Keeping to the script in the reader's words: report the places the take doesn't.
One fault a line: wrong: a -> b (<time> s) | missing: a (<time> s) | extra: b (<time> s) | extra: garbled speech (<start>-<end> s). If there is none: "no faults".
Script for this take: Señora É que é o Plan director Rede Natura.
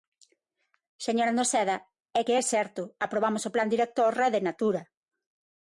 extra: Noceda (1.4 s)
extra: certo aprobamos (2.5 s)